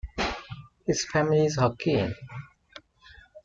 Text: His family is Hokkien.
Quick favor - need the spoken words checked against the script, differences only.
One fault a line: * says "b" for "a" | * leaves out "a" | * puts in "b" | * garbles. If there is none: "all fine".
all fine